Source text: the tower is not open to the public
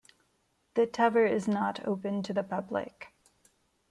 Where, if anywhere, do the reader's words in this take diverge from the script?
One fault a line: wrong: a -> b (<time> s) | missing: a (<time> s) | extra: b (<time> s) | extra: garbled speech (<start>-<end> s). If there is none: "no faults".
no faults